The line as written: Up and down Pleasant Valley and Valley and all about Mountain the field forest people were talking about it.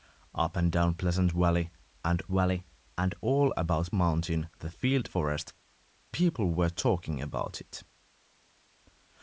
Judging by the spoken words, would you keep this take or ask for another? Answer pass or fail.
pass